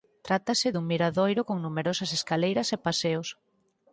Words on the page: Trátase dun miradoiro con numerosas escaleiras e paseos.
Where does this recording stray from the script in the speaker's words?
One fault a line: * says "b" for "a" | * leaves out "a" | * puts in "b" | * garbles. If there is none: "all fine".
all fine